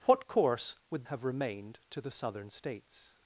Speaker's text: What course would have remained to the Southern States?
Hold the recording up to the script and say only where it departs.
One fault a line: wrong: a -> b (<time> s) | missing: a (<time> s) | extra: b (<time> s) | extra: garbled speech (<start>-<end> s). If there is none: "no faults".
no faults